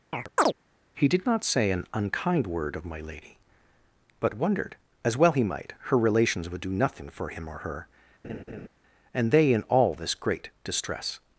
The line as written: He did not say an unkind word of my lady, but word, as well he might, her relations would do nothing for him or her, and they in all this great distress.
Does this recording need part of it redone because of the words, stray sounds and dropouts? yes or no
yes